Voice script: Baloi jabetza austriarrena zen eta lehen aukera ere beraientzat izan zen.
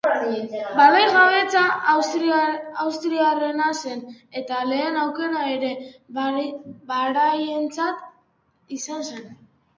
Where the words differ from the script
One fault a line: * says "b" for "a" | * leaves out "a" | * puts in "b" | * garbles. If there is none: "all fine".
all fine